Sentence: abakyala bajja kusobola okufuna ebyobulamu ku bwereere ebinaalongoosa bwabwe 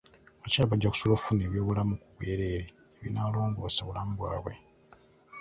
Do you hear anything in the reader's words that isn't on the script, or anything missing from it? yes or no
yes